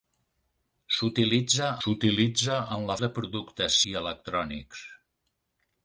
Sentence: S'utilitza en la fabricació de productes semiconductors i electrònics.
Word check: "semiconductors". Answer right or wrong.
wrong